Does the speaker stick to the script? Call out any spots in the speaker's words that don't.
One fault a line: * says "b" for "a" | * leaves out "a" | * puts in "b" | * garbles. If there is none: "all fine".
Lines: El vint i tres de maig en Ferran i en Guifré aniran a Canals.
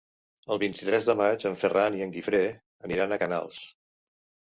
all fine